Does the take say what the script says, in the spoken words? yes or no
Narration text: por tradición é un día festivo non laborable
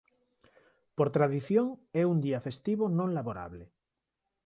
yes